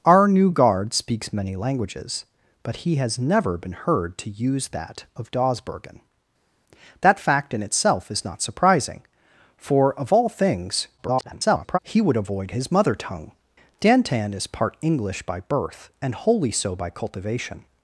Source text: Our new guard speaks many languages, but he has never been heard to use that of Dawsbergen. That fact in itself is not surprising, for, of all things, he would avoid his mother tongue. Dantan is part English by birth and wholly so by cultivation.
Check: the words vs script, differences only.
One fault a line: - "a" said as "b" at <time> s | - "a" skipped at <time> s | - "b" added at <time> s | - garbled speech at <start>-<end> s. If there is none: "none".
- garbled speech at 11.0-11.8 s